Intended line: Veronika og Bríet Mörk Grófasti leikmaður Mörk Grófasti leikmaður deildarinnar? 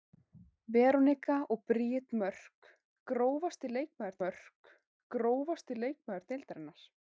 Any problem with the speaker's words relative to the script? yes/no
no